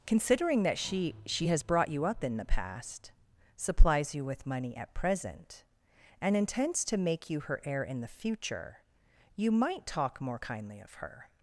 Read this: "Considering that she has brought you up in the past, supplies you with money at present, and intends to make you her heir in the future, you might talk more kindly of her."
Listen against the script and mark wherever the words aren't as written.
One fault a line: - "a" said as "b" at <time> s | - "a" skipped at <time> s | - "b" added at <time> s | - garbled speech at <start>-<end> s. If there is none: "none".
- "she" added at 1.2 s